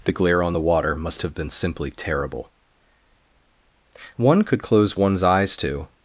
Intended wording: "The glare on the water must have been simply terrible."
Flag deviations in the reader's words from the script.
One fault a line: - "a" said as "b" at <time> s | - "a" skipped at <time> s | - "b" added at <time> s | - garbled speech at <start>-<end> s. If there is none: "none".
- "One could close one's eyes to" added at 4.2 s